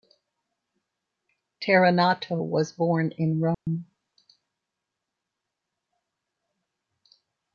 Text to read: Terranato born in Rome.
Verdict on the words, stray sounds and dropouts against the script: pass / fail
fail